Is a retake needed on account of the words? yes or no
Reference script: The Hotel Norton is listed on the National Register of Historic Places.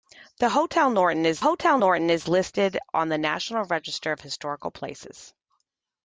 yes